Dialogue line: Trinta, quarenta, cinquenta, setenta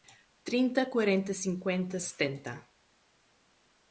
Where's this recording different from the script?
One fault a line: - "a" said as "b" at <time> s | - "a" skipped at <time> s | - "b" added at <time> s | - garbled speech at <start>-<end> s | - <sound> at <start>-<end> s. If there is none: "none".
none